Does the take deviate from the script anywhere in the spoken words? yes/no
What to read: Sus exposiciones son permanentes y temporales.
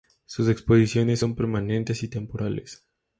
no